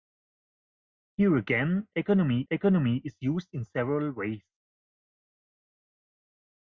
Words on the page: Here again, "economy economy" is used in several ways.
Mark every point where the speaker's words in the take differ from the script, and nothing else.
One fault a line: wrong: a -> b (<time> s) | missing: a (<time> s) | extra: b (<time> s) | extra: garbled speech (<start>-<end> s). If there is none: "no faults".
no faults